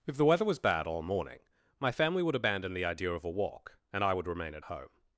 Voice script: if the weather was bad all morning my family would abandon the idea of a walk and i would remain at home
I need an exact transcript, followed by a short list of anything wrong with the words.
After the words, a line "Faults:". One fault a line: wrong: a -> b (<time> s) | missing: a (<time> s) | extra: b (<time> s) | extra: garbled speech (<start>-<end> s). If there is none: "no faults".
if the weather was bad all morning my family would abandon the idea of a walk and i would remain at home
Faults:
no faults